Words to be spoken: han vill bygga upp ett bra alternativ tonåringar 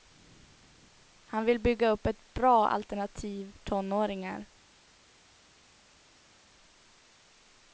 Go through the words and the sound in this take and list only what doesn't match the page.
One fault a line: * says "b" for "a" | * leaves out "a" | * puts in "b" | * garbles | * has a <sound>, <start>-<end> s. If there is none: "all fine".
all fine